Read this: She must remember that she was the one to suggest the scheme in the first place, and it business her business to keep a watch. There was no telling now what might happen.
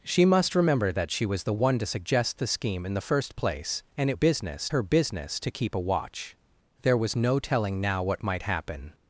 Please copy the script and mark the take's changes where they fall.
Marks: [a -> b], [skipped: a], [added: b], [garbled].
She must remember that she was the one to suggest the scheme in the first place, and it business her business to keep a watch. There was no telling now what might happen.